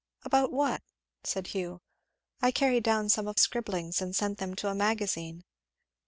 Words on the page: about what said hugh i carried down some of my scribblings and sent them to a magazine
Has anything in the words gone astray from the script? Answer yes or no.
yes